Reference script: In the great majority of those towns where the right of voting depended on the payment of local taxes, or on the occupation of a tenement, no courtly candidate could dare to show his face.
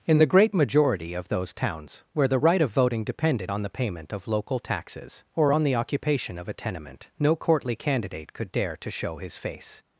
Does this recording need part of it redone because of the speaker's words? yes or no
no